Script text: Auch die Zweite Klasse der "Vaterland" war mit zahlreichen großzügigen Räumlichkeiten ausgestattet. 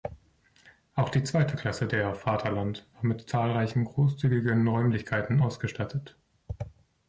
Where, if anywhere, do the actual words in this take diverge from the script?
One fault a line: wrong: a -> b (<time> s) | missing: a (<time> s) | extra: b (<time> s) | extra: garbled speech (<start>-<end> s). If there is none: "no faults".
no faults